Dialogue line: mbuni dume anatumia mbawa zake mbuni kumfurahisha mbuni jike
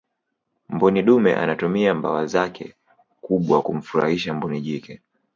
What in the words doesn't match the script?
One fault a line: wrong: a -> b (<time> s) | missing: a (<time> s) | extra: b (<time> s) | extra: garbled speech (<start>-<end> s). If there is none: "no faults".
wrong: mbuni -> kubwa (3.2 s)